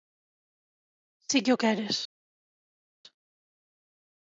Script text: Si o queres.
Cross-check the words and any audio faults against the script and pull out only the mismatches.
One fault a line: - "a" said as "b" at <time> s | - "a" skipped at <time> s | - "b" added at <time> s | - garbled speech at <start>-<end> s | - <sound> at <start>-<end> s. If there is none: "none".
- "que" added at 1.4 s